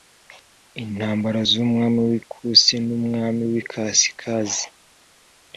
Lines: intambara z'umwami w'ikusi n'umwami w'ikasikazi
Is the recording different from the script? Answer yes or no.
no